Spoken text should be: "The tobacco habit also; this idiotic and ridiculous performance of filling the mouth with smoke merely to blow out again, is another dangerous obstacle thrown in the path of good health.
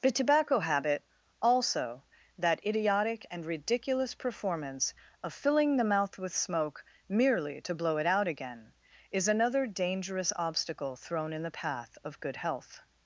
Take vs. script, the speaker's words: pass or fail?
fail